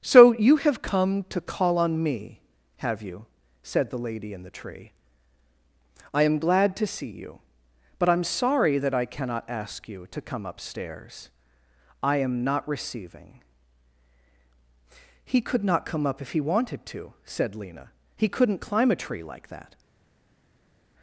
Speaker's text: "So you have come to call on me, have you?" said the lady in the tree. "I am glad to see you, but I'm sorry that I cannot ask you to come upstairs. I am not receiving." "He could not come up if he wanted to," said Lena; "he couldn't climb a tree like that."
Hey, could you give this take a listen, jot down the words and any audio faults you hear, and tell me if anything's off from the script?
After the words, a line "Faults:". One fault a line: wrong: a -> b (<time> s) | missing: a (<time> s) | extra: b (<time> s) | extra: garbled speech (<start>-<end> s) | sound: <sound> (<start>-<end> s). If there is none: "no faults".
"So you have come to call on me, have you?" said the lady in the tree. "I am glad to see you, but I'm sorry that I cannot ask you to come upstairs. I am not receiving." "He could not come up if he wanted to," said Lena; "he couldn't climb a tree like that."
Faults:
no faults